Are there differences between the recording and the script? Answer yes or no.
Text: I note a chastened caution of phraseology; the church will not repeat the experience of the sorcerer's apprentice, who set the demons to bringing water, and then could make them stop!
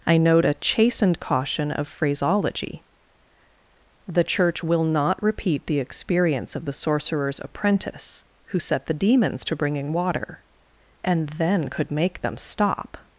no